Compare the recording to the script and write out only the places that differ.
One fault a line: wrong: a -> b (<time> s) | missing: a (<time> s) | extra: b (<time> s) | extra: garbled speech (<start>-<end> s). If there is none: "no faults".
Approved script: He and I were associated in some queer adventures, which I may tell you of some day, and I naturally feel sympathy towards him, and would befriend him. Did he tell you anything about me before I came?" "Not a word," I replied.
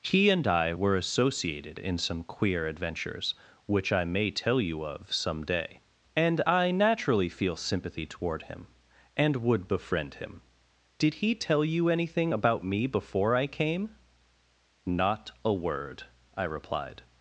wrong: towards -> toward (8.1 s)